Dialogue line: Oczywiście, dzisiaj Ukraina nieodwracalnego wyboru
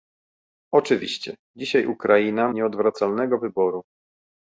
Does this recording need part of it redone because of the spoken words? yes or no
no